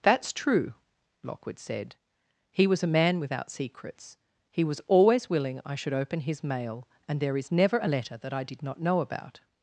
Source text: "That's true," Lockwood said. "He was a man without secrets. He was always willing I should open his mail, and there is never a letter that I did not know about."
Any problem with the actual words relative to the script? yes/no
no